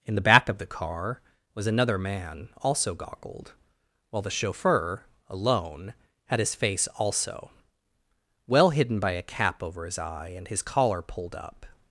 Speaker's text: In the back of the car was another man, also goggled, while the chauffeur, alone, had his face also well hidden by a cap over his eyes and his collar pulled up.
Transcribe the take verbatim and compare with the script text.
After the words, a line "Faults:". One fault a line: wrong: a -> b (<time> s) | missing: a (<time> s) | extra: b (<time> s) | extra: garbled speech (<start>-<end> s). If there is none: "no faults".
In the back of the car was another man, also goggled, while the chauffeur, alone, had his face also well hidden by a cap over his eye and his collar pulled up.
Faults:
wrong: eyes -> eye (10.0 s)